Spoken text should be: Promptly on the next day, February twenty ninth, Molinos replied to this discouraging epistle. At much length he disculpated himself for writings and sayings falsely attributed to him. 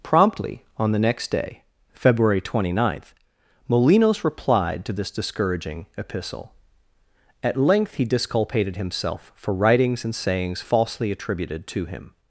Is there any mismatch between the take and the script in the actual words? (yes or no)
yes